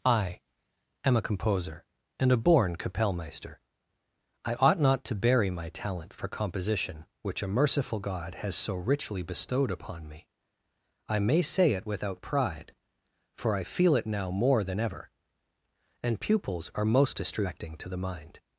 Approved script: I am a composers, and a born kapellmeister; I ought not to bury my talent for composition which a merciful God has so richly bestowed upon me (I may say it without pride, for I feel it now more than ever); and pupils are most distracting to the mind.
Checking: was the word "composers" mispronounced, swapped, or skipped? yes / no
yes